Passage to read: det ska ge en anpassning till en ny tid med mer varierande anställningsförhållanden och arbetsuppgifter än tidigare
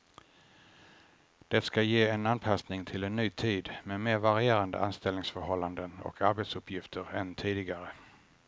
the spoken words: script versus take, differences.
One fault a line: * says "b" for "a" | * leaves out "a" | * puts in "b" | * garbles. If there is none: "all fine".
all fine